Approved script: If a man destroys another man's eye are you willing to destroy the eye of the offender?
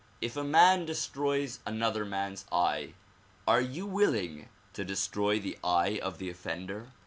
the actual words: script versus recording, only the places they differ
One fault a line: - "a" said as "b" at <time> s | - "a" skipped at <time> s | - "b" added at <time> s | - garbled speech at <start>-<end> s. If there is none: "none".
none